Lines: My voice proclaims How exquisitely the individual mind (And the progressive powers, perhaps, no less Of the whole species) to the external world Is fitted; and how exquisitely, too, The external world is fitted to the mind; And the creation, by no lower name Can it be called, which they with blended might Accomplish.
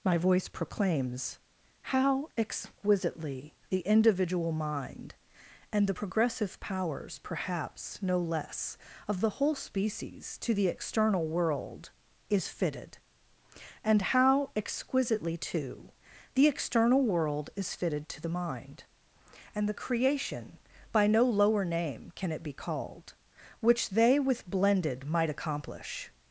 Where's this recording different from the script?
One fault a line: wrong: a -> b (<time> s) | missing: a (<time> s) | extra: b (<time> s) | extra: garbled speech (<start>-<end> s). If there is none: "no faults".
no faults